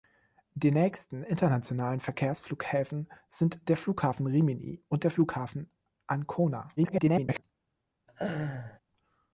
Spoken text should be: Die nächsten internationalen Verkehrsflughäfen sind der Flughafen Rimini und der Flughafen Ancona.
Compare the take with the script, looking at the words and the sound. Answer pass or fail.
fail